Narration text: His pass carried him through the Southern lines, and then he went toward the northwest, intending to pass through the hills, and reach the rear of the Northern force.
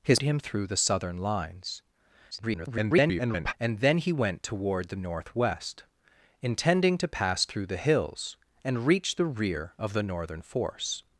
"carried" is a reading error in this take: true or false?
true